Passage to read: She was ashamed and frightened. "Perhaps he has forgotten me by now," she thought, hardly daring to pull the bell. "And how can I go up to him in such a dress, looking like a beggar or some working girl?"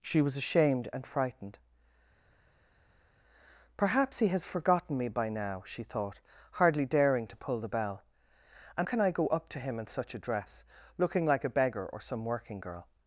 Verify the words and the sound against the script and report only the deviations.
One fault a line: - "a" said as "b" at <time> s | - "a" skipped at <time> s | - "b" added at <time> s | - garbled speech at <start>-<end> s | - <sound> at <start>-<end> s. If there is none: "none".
- "how" skipped at 8.9 s